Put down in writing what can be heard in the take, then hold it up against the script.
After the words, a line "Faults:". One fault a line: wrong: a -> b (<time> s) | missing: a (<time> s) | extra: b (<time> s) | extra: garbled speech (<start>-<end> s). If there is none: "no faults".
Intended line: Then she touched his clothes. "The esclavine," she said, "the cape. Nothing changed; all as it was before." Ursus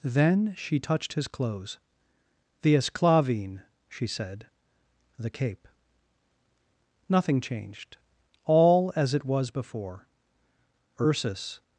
Then she touched his clothes. "The esclavine," she said, "the cape. Nothing changed; all as it was before." Ursus
Faults:
no faults